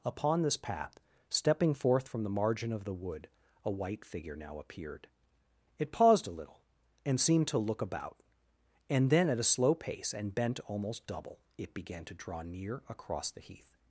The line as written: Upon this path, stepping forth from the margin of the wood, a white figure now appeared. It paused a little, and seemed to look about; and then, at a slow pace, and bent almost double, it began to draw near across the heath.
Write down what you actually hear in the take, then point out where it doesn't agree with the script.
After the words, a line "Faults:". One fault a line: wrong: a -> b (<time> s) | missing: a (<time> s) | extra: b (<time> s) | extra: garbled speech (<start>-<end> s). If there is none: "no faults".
Upon this path, stepping forth from the margin of the wood, a white figure now appeared. It paused a little, and seemed to look about; and then, at a slow pace, and bent almost double, it began to draw near across the heath.
Faults:
no faults